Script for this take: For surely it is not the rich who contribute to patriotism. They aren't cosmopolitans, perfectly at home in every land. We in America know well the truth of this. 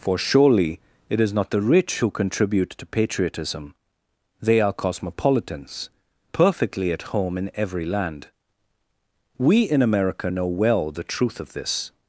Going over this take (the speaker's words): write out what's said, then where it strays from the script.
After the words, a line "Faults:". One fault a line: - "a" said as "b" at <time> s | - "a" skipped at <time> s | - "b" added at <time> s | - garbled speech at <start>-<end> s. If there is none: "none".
For surely it is not the rich who contribute to patriotism. They are cosmopolitans, perfectly at home in every land. We in America know well the truth of this.
Faults:
- "aren't" said as "are" at 4.6 s